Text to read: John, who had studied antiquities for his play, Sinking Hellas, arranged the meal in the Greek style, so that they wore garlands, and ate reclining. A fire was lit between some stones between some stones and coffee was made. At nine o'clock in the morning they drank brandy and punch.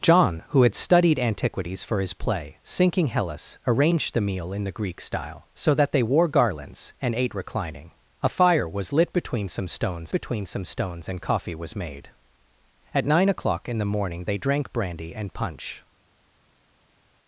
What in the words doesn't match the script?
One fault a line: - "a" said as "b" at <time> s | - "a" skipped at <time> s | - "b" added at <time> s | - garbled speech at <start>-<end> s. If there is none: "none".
none